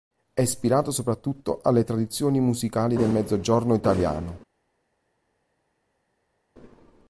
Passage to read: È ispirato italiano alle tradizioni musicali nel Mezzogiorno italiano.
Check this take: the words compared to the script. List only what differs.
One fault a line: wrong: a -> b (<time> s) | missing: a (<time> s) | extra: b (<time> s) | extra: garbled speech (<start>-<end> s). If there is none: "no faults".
wrong: italiano -> soprattutto (0.9 s)
wrong: nel -> del (3.0 s)